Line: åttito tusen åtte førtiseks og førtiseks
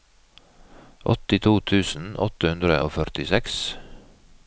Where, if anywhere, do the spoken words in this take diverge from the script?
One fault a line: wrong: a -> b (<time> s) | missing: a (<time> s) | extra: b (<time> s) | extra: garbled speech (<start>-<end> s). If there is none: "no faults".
wrong: førtiseks -> hundre (2.5 s)